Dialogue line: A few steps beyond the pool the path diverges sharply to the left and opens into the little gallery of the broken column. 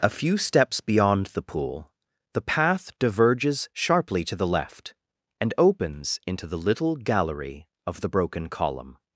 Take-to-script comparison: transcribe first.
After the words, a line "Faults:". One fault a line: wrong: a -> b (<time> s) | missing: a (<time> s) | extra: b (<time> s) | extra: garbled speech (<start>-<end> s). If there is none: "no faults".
A few steps beyond the pool the path diverges sharply to the left and opens into the little gallery of the broken column.
Faults:
no faults